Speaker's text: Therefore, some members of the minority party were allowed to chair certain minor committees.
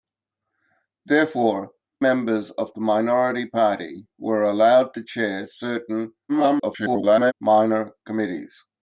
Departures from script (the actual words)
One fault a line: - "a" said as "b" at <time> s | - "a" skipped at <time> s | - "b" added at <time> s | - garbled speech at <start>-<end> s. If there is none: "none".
- "some" skipped at 1.7 s
- garbled speech at 6.3-7.3 s